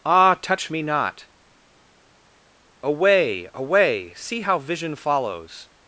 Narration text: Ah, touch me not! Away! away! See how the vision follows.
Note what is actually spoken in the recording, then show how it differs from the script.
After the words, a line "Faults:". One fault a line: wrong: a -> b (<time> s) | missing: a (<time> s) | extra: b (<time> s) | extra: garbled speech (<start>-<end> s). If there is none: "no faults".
Ah, touch me not! Away! away! See how vision follows.
Faults:
missing: the (4.6 s)